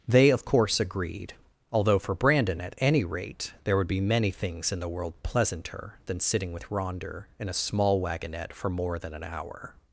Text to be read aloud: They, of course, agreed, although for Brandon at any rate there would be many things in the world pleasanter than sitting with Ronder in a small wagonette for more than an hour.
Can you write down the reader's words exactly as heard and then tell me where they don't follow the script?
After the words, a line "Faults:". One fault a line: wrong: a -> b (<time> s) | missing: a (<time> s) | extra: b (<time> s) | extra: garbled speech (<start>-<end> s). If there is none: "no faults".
They, of course, agreed, although for Brandon at any rate there would be many things in the world pleasanter than sitting with Ronder in a small wagonette for more than an hour.
Faults:
no faults